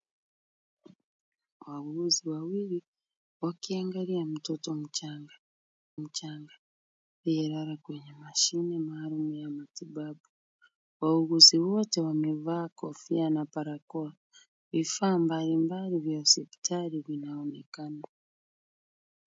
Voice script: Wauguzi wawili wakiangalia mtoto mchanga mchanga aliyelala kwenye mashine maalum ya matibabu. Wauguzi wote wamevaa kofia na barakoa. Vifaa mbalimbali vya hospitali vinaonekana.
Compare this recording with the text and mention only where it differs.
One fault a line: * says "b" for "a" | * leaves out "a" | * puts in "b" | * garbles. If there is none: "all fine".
all fine